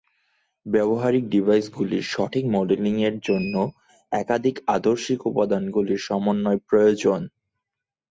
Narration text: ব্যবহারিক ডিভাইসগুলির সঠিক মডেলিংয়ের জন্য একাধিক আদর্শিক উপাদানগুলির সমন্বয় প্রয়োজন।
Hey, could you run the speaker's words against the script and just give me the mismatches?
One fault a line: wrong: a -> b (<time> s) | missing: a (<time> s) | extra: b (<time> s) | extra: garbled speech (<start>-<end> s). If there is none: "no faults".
no faults